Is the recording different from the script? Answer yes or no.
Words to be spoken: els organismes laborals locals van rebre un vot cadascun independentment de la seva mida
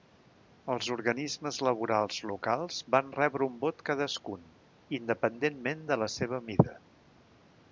no